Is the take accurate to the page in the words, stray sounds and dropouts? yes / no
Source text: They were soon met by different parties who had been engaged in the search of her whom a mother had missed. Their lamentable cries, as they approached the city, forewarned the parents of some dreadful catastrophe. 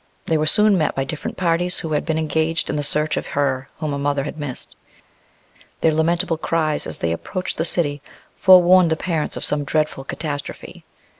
yes